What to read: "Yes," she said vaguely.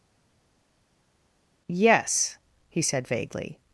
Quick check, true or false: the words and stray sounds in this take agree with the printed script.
false